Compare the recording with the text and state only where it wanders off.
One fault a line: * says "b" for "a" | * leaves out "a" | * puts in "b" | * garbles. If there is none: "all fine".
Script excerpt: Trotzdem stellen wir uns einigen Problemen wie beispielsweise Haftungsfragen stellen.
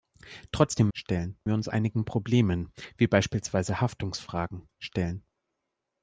all fine